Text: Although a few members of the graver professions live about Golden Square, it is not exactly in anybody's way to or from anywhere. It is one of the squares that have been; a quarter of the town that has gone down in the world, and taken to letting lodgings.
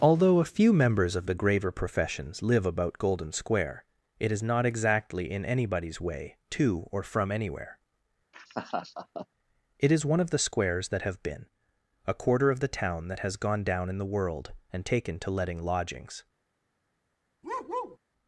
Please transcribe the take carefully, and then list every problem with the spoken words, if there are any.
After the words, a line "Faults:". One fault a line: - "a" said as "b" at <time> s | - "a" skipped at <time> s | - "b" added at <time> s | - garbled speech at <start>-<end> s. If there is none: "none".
Although a few members of the graver professions live about Golden Square, it is not exactly in anybody's way to or from anywhere. It is one of the squares that have been; a quarter of the town that has gone down in the world, and taken to letting lodgings.
Faults:
none